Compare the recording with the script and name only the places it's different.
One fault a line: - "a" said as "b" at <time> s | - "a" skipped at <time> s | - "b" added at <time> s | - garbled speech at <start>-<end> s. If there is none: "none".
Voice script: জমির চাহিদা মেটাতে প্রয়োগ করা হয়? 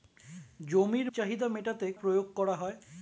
none